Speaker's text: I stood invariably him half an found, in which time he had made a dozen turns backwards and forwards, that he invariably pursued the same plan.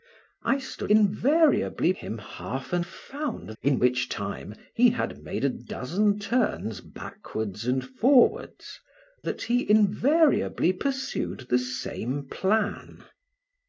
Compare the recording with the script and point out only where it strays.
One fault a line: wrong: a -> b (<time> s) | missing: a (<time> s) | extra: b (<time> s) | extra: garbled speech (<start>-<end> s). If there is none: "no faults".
no faults